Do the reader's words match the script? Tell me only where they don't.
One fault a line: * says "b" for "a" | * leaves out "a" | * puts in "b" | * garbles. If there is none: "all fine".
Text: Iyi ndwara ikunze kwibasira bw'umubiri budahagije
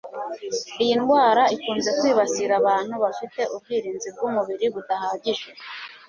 * puts in "abantu bafite ubwirinzi"